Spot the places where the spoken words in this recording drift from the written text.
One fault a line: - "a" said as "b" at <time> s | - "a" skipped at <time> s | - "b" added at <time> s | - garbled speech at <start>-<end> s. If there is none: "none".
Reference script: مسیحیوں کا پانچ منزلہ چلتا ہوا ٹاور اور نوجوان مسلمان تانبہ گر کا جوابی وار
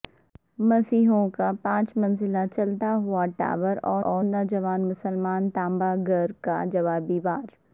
- "اور" added at 4.0 s